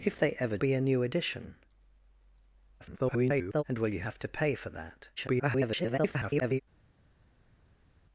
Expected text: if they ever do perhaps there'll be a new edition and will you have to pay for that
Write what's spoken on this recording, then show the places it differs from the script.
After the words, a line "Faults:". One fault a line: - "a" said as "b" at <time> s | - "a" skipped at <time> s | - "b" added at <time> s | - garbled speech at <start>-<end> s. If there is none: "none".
if they ever be a new edition [garbled] and will you have to pay for that [garbled]
Faults:
- "do perhaps there'll" skipped at 0.6 s
- garbled speech at 2.8-3.6 s
- garbled speech at 5.2-6.6 s